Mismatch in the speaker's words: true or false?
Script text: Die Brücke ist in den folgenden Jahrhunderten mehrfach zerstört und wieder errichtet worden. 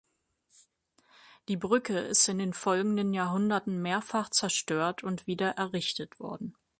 false